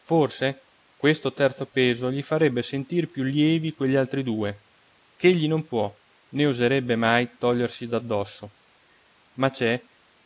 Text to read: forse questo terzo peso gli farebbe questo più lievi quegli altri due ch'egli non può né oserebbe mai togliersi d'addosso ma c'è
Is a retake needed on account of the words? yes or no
yes